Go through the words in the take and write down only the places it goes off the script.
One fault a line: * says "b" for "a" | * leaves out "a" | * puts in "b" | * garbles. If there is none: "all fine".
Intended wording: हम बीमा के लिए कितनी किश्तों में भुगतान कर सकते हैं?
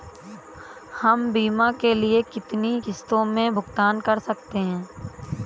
all fine